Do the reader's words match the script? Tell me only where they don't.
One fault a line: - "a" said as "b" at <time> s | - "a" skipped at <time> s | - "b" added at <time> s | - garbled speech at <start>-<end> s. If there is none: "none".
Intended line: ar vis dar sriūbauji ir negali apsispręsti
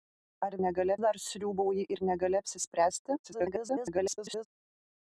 - "vis" said as "negali" at 0.6 s
- garbled speech at 3.2-4.5 s